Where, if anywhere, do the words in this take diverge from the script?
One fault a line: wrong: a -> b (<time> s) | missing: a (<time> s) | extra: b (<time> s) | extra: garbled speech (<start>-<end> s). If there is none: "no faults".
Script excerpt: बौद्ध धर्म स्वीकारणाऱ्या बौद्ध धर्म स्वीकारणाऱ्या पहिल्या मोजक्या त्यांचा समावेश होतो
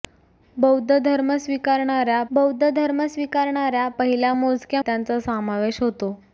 no faults